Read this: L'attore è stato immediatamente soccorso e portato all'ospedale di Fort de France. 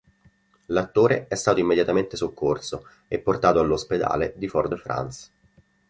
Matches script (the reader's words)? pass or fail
pass